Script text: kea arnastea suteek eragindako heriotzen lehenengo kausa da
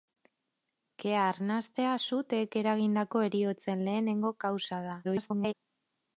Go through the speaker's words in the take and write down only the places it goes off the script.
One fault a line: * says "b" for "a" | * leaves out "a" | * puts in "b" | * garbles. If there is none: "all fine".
* garbles